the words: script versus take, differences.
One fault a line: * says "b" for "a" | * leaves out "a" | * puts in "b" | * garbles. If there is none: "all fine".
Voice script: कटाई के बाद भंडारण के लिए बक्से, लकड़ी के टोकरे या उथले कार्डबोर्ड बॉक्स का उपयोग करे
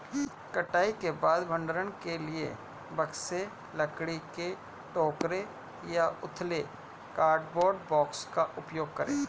all fine